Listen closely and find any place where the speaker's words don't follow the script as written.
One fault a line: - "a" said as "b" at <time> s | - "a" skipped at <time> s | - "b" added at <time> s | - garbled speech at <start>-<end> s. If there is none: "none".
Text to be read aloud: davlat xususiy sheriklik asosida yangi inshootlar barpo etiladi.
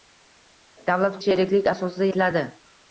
- "xususiy" skipped at 1.2 s
- "yangi inshootlar barpo" skipped at 2.1 s